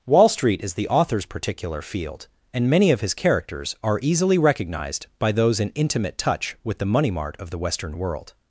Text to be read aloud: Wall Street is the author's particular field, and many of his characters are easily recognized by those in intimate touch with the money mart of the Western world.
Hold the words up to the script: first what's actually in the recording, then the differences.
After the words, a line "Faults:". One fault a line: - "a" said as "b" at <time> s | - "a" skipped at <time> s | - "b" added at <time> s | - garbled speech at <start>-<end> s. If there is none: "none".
Wall Street is the author's particular field, and many of his characters are easily recognized by those in intimate touch with the money mart of the Western world.
Faults:
none